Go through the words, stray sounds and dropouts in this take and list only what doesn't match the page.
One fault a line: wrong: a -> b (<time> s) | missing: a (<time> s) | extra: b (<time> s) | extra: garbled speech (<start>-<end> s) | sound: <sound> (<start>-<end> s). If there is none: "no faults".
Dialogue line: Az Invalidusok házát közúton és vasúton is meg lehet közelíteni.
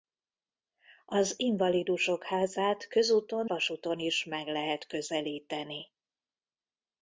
missing: és (3.5 s)